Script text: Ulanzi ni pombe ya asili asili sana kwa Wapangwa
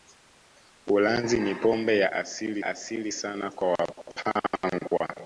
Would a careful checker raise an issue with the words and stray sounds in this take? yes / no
no